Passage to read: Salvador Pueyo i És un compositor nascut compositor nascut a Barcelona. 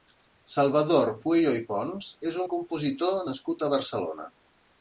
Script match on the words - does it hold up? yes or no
no